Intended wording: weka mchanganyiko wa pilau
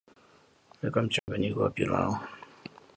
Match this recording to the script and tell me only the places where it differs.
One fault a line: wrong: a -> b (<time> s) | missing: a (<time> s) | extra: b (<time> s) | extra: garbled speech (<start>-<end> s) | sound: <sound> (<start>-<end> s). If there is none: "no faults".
sound: dropout (1.2-1.3 s)